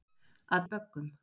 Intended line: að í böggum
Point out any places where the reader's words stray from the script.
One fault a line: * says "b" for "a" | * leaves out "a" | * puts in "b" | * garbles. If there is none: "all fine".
all fine